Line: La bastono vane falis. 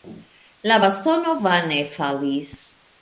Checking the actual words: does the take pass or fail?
pass